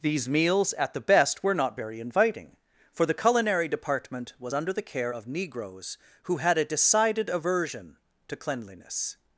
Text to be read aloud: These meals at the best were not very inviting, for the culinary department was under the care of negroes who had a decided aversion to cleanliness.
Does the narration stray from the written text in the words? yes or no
no